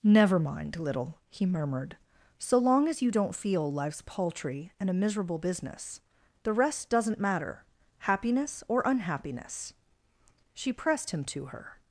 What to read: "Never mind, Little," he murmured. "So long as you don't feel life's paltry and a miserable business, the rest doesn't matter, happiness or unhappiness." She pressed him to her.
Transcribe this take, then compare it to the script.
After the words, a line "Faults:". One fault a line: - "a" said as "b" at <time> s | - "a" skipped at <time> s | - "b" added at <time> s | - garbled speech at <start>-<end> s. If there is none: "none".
"Never mind, Little," he murmured. "So long as you don't feel life's paltry and a miserable business, the rest doesn't matter, happiness or unhappiness." She pressed him to her.
Faults:
none